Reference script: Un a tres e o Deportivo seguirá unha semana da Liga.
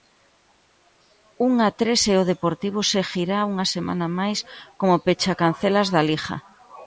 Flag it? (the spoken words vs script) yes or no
yes